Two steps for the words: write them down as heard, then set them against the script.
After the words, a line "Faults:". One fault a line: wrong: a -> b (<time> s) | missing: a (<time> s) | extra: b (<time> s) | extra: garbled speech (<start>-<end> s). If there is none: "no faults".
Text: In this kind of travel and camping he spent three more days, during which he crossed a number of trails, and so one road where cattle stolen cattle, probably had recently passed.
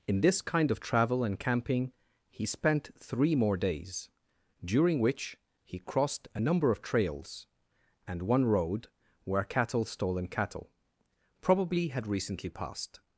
In this kind of travel and camping he spent three more days, during which he crossed a number of trails, and one road where cattle stolen cattle, probably had recently passed.
Faults:
missing: so (8.2 s)